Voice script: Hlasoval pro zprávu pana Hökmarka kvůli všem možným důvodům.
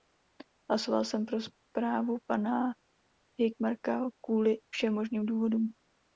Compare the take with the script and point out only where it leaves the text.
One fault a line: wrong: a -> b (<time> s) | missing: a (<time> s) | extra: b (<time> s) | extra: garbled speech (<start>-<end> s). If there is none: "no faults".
extra: jsem (1.1 s)